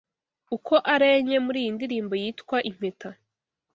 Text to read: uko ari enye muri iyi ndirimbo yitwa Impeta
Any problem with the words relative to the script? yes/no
no